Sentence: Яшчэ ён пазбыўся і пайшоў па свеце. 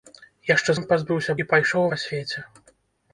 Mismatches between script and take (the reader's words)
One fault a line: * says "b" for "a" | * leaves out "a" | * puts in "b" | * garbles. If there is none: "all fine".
all fine